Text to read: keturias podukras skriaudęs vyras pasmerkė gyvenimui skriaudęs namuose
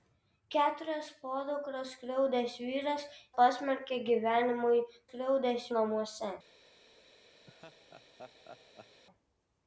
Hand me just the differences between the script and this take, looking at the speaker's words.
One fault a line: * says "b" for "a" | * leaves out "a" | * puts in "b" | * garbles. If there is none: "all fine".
all fine